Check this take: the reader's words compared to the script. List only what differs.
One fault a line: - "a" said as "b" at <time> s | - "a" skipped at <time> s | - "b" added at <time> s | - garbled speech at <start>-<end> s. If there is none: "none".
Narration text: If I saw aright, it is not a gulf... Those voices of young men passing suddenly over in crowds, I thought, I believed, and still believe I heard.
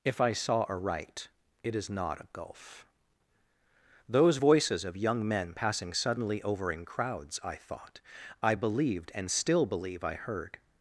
none